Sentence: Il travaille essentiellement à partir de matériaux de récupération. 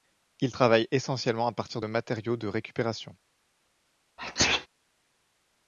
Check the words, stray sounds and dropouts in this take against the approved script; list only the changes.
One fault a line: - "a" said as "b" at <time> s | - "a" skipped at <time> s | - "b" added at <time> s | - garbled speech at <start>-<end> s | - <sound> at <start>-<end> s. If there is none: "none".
- sneeze at 4.2-4.7 s